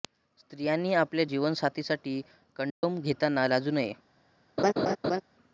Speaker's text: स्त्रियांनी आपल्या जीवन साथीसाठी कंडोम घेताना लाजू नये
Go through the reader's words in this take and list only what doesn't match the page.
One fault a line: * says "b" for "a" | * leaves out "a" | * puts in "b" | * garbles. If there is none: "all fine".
all fine